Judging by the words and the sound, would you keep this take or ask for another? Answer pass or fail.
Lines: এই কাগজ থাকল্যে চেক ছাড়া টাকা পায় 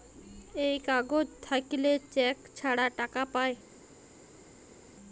pass